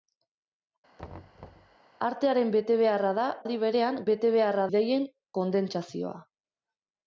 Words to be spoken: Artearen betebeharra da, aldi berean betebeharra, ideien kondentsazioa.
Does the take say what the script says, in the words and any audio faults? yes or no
no